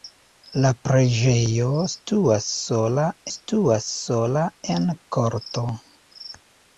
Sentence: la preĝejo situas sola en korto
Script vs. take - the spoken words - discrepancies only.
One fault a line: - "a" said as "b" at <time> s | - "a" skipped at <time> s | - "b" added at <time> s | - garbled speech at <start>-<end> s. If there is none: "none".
- "situas sola" added at 3.3 s